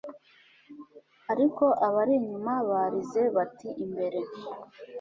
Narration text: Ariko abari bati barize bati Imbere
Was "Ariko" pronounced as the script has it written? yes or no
yes